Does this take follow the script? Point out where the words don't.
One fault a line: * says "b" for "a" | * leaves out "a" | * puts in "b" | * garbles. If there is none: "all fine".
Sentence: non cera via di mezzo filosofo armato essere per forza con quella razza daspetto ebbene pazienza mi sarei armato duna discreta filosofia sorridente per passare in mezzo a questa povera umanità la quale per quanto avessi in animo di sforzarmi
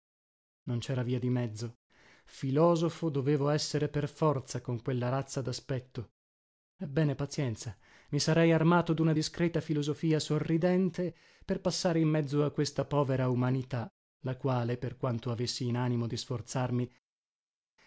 * says "dovevo" for "armato"